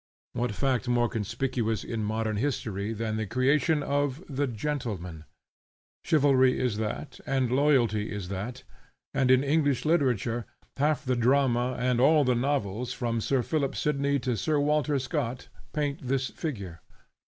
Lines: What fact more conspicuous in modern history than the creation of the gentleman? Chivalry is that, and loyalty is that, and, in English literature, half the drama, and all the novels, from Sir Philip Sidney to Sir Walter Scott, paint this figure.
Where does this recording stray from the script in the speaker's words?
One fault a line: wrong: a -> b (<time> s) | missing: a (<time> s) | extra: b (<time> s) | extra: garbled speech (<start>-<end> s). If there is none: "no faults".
no faults